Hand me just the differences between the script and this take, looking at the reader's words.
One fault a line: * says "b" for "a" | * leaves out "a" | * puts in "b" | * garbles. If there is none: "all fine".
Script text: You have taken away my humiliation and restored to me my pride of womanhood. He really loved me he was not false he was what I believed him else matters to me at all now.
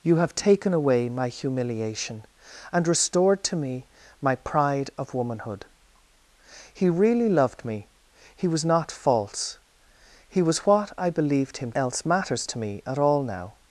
all fine